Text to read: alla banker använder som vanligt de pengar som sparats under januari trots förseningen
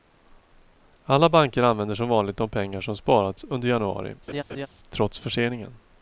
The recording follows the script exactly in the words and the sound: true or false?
false